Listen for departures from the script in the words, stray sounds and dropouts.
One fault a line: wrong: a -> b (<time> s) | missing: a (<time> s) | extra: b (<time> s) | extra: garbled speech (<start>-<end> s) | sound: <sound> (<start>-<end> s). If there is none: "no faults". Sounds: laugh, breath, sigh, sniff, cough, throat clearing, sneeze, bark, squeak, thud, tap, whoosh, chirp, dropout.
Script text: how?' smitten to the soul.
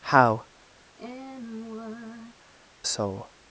missing: smitten to the (0.5 s)
sound: sigh (1.0-2.4 s)